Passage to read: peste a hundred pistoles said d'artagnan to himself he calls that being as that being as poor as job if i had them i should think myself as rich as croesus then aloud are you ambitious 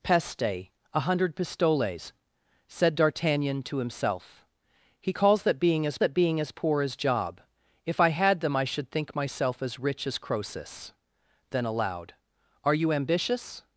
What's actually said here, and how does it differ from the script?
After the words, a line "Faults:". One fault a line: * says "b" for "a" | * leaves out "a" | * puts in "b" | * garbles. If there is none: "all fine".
peste a hundred pistoles said d'artagnan to himself he calls that being as that being as poor as job if i had them i should think myself as rich as croesus then aloud are you ambitious
Faults:
all fine